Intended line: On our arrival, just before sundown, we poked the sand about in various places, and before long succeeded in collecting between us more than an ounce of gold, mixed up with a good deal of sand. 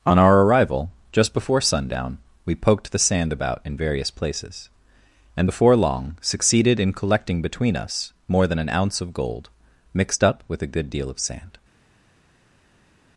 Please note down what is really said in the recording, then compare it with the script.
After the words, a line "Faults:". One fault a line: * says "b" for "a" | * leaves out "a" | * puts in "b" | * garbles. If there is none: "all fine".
On our arrival, just before sundown, we poked the sand about in various places, and before long succeeded in collecting between us more than an ounce of gold, mixed up with a good deal of sand.
Faults:
all fine